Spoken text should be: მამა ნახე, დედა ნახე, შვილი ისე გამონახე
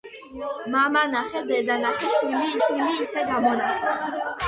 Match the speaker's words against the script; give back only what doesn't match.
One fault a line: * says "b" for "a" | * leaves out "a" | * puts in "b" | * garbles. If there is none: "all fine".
* puts in "შვილი"